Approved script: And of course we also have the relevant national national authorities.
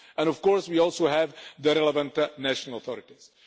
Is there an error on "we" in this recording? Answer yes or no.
no